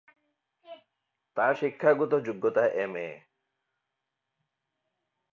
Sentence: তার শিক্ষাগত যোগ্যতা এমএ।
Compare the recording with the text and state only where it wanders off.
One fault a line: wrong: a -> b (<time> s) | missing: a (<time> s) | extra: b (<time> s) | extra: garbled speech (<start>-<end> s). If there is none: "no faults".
no faults